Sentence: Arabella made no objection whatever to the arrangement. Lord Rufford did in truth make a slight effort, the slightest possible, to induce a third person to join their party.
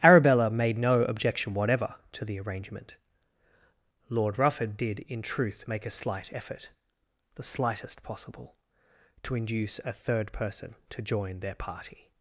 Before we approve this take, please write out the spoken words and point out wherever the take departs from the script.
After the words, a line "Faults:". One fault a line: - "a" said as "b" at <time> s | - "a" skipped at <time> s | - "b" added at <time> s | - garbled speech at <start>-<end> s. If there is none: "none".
Arabella made no objection whatever to the arrangement. Lord Rufford did in truth make a slight effort, the slightest possible, to induce a third person to join their party.
Faults:
none